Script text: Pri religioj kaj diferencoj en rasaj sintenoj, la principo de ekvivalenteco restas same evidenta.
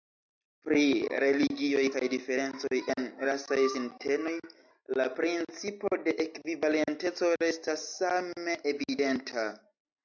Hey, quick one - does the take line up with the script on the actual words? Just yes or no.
yes